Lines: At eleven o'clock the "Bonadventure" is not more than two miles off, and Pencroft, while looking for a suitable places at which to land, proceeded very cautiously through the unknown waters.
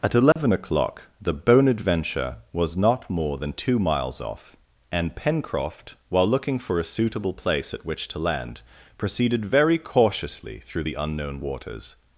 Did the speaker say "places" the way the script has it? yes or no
no